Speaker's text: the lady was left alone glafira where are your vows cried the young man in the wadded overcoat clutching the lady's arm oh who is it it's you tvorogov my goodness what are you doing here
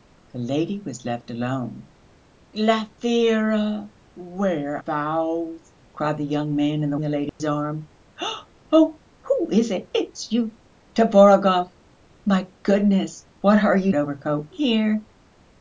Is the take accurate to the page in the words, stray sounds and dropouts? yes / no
no